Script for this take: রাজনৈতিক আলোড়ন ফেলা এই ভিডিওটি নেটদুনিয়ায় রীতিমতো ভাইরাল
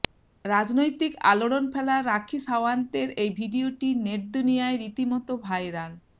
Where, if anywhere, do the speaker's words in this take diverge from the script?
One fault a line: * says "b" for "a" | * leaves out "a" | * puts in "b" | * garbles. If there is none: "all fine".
* puts in "রাখি সাওয়ান্তের"